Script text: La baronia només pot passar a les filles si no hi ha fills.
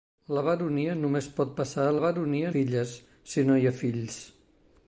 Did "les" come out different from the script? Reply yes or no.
yes